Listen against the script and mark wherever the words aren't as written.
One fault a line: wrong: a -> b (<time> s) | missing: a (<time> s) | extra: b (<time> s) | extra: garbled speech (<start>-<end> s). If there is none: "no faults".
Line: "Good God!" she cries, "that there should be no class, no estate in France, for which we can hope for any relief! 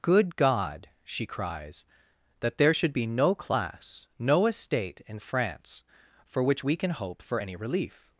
no faults